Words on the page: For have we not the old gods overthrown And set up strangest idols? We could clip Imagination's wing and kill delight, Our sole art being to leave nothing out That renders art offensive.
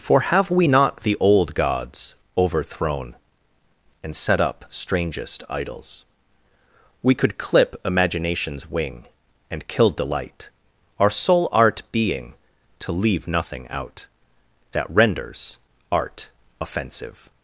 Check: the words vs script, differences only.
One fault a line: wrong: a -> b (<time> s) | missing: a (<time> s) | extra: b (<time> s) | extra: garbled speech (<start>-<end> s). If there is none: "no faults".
no faults